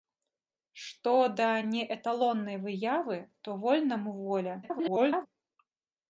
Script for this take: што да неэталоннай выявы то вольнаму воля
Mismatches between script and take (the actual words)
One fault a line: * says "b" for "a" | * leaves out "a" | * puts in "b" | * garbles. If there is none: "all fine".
* garbles